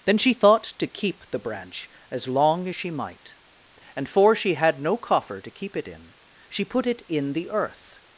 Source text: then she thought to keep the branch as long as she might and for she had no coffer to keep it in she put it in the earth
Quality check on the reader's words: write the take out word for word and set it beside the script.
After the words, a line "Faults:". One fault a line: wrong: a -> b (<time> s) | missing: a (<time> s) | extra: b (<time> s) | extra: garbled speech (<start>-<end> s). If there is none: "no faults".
then she thought to keep the branch as long as she might and for she had no coffer to keep it in she put it in the earth
Faults:
no faults